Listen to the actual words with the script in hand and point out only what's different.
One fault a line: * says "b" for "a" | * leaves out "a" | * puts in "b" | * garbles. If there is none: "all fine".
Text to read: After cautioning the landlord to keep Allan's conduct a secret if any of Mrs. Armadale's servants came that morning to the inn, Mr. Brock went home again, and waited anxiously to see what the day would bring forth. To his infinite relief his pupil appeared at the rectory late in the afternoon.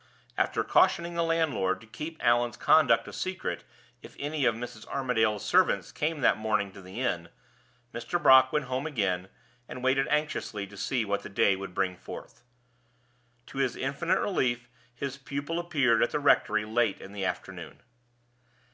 all fine